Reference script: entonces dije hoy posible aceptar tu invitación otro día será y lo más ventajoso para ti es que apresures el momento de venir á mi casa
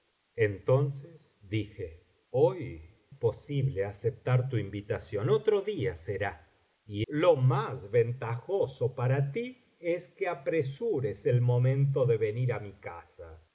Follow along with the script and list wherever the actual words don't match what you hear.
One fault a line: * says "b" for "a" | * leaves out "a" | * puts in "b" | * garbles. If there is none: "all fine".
all fine